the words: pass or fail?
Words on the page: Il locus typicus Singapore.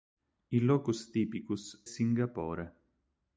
pass